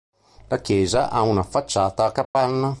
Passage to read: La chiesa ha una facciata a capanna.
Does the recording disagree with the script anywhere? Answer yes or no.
no